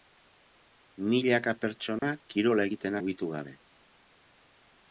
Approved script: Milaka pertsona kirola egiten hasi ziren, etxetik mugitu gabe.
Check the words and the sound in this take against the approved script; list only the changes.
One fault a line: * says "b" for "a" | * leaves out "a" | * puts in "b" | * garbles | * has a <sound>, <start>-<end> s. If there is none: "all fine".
* has a dropout, 2.0-2.0 s
* leaves out "hasi ziren etxetik"